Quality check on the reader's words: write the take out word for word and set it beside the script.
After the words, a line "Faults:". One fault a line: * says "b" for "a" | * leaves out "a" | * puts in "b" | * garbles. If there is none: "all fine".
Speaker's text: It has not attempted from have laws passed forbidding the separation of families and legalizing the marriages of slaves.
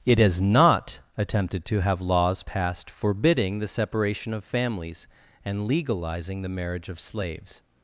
It has not attempted to have laws passed forbidding the separation of families and legalizing the marriage of slaves.
Faults:
* says "to" for "from"
* says "marriage" for "marriages"